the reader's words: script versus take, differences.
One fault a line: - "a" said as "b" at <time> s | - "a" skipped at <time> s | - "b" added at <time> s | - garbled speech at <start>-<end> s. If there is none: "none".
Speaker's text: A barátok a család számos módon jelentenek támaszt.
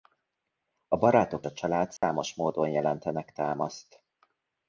none